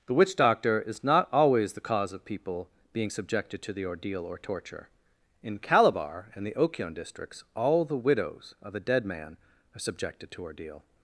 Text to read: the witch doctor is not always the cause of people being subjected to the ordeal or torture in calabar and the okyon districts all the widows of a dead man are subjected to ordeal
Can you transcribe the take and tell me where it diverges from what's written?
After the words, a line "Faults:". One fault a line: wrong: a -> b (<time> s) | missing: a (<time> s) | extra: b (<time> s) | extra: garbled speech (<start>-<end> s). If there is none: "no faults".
the witch doctor is not always the cause of people being subjected to the ordeal or torture in calabar and the okyon districts all the widows of a dead man are subjected to ordeal
Faults:
no faults